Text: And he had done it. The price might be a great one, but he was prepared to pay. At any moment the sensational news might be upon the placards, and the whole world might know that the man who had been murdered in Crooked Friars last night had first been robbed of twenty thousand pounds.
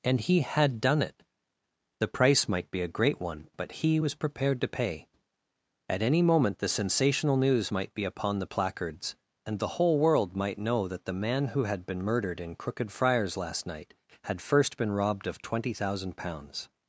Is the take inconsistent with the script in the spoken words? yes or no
no